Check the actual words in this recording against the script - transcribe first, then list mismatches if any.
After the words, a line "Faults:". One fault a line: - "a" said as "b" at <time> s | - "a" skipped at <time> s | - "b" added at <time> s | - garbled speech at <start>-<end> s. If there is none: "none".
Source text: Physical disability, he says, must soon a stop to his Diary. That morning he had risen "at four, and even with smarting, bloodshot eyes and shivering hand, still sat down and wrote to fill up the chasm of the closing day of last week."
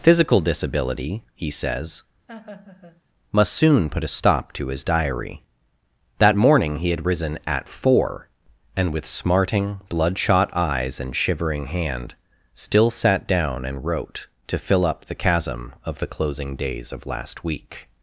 Physical disability, he says, must soon put a stop to his Diary. That morning he had risen "at four, and with smarting, bloodshot eyes and shivering hand, still sat down and wrote to fill up the chasm of the closing days of last week."
Faults:
- "put" added at 3.9 s
- "even" skipped at 8.9 s
- "day" said as "days" at 16.6 s